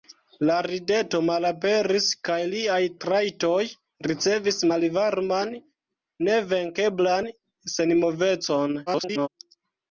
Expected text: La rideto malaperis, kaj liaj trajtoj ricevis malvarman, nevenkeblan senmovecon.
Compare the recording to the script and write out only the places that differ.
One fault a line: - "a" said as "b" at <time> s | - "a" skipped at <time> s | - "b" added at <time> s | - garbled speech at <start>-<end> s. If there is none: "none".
- garbled speech at 8.9-9.3 s